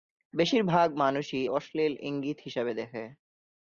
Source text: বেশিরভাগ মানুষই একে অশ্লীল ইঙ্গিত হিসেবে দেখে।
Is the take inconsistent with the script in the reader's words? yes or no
yes